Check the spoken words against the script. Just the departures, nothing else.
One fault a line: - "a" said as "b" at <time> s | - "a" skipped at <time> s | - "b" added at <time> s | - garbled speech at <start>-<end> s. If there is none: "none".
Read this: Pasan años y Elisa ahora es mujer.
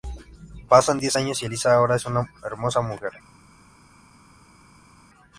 - "diez" added at 1.0 s
- "una hermosa" added at 2.0 s